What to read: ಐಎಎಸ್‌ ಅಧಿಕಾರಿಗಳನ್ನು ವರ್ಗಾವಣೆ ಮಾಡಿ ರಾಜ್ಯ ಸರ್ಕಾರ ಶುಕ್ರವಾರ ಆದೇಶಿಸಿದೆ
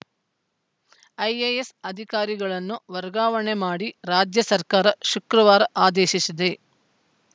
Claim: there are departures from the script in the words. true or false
false